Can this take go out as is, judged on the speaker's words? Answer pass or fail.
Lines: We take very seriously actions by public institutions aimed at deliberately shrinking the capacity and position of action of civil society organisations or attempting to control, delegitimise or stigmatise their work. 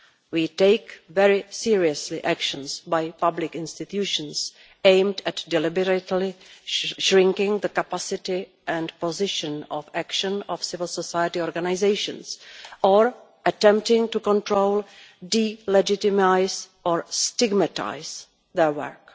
pass